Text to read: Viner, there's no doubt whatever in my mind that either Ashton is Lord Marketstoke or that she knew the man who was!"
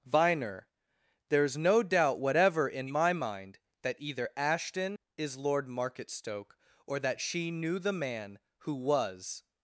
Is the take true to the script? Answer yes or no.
yes